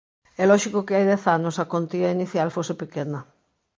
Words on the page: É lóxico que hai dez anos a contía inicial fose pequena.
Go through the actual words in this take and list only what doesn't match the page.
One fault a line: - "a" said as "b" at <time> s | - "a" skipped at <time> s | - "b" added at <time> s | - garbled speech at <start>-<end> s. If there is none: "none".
none